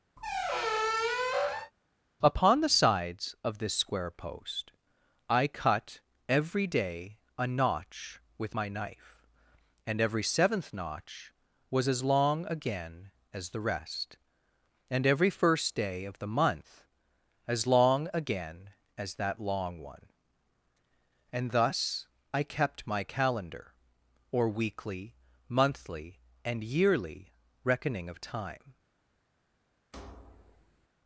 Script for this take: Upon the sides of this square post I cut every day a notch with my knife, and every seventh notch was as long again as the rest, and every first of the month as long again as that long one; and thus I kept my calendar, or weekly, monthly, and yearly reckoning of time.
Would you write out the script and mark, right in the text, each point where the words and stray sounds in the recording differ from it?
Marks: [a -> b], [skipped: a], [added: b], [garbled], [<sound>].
[squeak] Upon the sides of this square post I cut every day a notch with my knife, and every seventh notch was as long again as the rest, and every first [added: day] of the month as long again as that long one; and thus I kept my calendar, or weekly, monthly, and yearly reckoning of time. [thud]